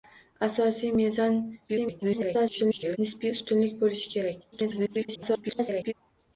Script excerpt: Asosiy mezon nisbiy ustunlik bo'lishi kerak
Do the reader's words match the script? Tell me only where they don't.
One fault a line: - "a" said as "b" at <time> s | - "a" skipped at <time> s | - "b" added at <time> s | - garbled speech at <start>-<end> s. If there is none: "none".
- garbled speech at 1.7-3.0 s
- garbled speech at 4.5-5.9 s